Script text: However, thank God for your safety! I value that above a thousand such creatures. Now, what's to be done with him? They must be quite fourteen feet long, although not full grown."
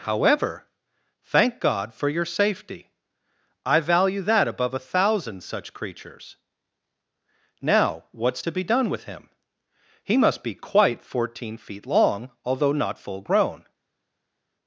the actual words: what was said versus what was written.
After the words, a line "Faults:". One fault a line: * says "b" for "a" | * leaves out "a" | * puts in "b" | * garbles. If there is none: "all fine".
However, thank God for your safety! I value that above a thousand such creatures. Now, what's to be done with him? He must be quite fourteen feet long, although not full grown."
Faults:
* says "He" for "They"